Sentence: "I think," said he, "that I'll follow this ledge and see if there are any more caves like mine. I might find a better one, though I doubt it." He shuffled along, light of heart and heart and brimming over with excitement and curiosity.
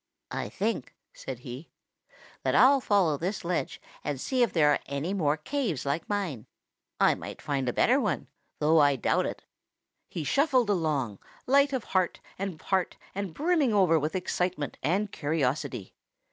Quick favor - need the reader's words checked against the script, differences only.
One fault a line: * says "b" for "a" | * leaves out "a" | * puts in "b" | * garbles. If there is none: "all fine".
all fine